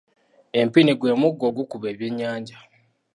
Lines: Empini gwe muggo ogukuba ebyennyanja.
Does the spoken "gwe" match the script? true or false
true